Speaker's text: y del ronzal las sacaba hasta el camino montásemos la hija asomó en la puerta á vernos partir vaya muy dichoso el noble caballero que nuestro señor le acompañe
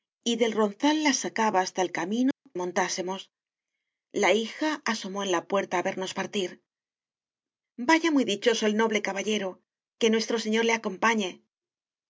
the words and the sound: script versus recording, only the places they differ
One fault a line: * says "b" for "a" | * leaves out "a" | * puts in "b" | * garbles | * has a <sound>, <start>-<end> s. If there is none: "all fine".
* has a dropout, 2.3-2.5 s